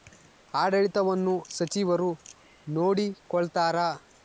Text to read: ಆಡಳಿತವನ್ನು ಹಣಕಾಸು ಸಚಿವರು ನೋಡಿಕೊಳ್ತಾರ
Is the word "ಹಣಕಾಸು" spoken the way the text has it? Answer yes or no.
no